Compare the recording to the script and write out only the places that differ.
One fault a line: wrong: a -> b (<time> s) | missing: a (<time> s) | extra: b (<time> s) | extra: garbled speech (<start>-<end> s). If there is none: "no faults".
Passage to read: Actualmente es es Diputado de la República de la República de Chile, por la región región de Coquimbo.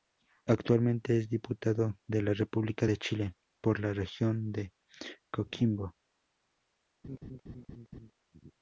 missing: es (1.3 s)
missing: la República de (2.9 s)
missing: región (4.5 s)